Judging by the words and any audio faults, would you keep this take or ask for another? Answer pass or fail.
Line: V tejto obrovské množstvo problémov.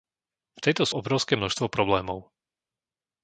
pass